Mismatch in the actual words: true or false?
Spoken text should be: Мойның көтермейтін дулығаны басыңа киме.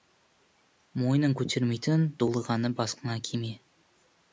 false